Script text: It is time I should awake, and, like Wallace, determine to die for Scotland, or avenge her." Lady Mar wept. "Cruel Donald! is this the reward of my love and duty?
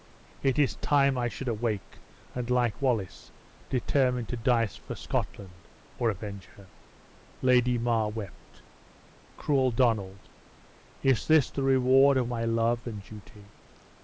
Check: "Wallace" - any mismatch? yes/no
no